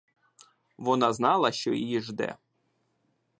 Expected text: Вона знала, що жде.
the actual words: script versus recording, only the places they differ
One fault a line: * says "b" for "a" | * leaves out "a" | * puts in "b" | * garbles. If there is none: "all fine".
* puts in "її"